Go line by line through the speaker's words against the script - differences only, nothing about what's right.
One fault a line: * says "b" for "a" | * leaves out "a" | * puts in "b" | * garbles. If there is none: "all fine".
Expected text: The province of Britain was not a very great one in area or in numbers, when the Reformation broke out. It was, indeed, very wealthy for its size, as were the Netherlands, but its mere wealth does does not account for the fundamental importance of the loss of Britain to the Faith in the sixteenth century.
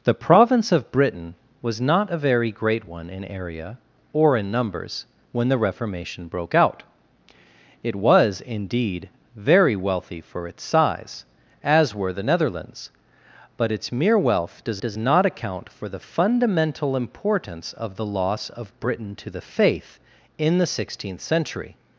all fine